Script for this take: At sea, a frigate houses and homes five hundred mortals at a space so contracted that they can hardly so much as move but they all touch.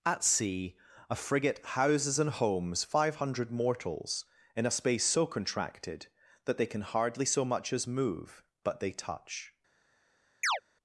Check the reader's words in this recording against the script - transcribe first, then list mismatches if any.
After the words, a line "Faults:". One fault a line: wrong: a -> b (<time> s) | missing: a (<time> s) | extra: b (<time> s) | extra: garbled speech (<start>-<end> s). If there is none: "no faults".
At sea, a frigate houses and homes five hundred mortals in a space so contracted that they can hardly so much as move but they touch.
Faults:
wrong: at -> in (4.5 s)
missing: all (8.9 s)